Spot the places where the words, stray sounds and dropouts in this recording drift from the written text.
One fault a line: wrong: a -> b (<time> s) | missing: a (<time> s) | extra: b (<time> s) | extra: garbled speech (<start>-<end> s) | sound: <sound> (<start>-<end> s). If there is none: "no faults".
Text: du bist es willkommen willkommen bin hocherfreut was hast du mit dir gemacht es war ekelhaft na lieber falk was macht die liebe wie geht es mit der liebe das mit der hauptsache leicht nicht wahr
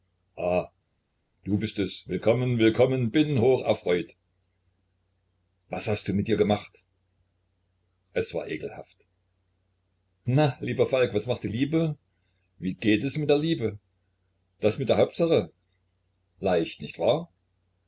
no faults